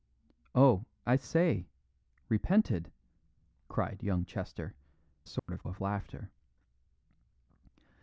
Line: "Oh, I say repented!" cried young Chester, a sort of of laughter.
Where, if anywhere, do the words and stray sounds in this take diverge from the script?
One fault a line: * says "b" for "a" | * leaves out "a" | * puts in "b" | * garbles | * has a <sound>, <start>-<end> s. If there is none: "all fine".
* has a dropout, 5.4-5.5 s